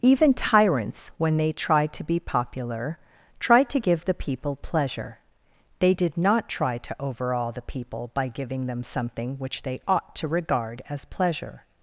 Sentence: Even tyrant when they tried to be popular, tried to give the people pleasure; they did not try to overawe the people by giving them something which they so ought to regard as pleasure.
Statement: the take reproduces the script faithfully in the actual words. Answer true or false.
false